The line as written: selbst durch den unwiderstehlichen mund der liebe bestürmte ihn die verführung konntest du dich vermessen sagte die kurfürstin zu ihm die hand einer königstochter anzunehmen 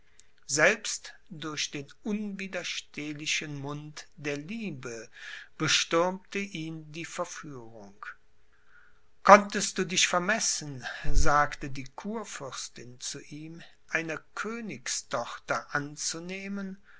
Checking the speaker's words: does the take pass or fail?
fail